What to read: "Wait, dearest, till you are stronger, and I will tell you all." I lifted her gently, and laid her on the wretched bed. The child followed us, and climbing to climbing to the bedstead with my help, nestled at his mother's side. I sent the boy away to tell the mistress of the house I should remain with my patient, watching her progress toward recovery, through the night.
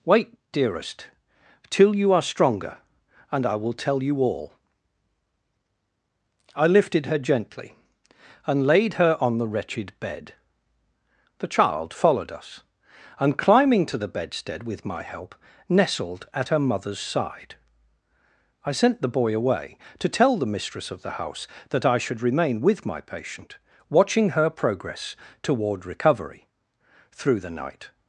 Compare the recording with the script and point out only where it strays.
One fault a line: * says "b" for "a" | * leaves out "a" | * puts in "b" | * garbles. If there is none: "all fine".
* leaves out "climbing to"
* says "her" for "his"
* puts in "that"